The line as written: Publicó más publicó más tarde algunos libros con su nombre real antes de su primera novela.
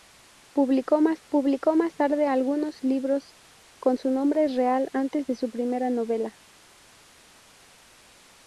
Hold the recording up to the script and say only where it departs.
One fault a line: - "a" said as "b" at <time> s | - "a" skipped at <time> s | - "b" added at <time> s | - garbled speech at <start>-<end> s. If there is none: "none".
none